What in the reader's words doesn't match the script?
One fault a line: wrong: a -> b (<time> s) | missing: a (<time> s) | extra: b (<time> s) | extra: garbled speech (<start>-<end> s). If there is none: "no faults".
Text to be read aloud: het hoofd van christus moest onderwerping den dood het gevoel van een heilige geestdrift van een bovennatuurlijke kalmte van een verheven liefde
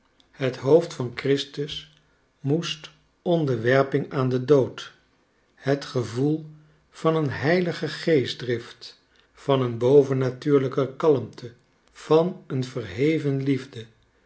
extra: aan (4.1 s)